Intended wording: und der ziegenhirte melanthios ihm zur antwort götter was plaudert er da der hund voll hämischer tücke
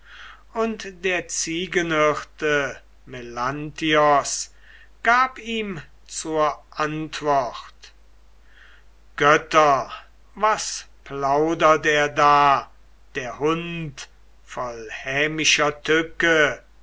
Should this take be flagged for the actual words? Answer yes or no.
yes